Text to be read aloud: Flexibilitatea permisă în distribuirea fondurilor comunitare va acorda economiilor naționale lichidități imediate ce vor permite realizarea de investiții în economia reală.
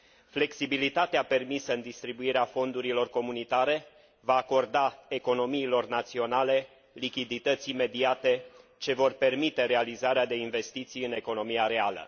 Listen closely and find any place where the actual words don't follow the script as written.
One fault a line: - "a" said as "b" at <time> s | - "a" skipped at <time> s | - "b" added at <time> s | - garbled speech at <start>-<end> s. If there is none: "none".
none